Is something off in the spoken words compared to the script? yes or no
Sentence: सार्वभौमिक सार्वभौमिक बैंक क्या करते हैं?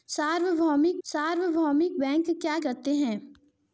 no